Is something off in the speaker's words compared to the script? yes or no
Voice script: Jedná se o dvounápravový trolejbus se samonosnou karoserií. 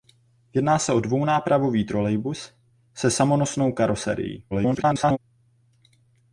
yes